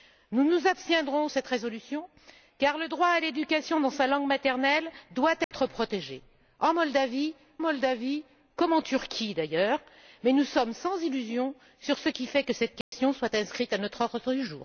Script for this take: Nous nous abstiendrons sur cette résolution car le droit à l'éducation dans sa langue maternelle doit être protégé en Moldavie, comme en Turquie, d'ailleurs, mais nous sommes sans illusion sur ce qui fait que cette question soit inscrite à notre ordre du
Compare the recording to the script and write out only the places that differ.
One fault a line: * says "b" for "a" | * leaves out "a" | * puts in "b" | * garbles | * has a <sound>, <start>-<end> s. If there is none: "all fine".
* leaves out "sur"
* has a dropout, 5.4-5.5 s
* puts in "Moldavie"
* has a dropout, 12.8-12.9 s